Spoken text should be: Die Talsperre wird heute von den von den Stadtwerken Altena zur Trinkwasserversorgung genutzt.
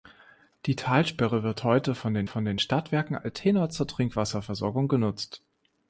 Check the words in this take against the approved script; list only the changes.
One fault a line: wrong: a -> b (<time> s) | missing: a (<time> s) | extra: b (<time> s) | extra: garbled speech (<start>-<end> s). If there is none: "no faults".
no faults